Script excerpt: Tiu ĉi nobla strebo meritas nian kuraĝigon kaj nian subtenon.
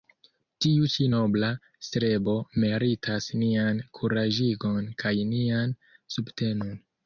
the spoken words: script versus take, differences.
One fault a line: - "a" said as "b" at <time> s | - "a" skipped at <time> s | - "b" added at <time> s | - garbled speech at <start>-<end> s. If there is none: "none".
none